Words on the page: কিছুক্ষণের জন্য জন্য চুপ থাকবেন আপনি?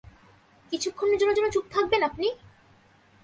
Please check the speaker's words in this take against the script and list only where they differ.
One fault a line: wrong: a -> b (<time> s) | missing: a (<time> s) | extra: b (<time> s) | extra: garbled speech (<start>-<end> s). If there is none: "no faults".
no faults